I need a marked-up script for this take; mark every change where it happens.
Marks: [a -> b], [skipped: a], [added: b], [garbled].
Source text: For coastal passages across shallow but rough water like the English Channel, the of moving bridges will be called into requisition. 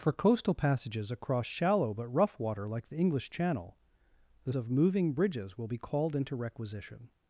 For coastal passages across shallow but rough water like the English Channel, the of moving bridges will be called into requisition.